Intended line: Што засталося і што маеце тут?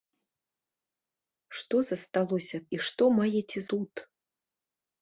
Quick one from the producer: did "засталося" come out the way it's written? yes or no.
yes